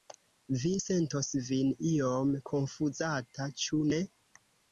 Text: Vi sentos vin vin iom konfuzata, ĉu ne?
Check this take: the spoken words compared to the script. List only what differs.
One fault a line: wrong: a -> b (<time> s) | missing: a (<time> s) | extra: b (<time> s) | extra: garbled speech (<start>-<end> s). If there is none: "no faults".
missing: vin (1.7 s)